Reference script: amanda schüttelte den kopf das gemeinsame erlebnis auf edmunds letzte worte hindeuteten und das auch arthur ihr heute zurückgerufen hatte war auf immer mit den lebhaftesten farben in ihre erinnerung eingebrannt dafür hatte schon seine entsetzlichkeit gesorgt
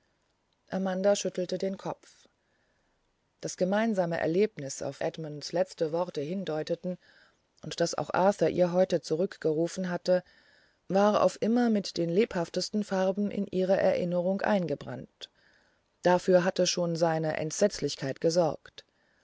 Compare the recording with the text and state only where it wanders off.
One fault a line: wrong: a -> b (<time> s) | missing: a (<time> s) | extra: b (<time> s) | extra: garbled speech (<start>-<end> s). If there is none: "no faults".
no faults